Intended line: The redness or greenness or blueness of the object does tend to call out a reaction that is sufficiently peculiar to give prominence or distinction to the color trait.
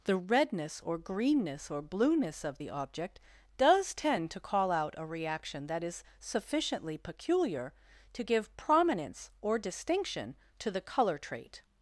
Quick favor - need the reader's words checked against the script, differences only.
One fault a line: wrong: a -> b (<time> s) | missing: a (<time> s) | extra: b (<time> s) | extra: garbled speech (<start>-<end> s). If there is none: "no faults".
no faults